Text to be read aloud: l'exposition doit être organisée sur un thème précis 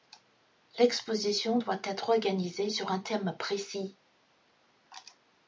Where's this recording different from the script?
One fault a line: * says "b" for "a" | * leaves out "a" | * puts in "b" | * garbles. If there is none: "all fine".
all fine